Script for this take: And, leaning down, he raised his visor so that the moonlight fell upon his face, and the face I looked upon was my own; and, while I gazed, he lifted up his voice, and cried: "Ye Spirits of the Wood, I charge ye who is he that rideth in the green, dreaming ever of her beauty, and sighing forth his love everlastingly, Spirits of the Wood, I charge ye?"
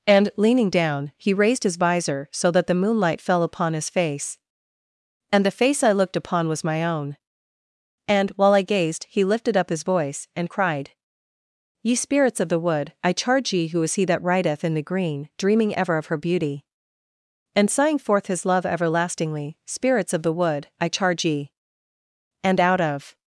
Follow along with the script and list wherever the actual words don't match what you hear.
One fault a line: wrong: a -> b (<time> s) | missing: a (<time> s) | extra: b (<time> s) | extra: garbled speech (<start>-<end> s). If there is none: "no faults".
extra: And out of (22.4 s)